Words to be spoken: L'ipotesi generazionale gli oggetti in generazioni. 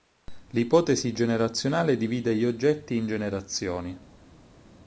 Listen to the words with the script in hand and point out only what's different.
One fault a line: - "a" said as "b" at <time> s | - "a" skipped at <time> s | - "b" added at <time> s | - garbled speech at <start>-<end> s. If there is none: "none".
- "divide" added at 1.9 s